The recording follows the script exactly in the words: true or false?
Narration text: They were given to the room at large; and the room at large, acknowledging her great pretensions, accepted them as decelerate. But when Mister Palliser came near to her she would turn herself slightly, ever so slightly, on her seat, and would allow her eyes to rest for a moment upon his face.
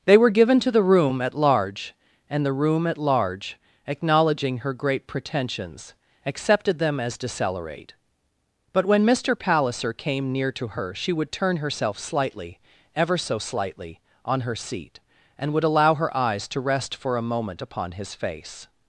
true